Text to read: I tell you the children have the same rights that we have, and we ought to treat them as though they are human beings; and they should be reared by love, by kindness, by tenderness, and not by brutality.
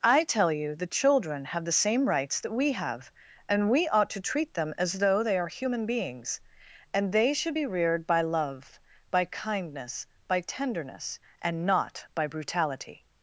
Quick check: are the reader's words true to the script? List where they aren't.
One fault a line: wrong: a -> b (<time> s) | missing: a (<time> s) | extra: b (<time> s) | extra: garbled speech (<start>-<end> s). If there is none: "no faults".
no faults